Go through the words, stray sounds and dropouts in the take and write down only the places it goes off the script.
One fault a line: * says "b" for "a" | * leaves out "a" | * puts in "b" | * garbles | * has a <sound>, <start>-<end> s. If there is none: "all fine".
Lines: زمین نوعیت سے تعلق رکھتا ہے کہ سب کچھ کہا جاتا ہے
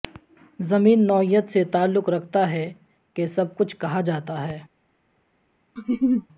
* has a laugh, 5.8-6.3 s